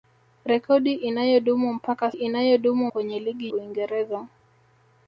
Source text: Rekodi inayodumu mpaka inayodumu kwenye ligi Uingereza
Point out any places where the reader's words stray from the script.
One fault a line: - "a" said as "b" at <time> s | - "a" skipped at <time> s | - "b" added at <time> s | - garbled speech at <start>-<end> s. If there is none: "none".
none